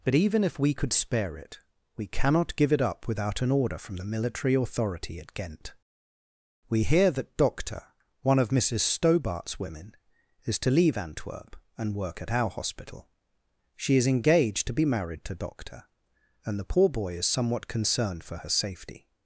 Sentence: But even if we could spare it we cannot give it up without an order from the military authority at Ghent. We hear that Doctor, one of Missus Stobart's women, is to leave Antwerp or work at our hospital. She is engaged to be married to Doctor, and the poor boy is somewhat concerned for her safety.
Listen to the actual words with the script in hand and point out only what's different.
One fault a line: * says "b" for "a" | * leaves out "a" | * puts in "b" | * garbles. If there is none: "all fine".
* says "and" for "or"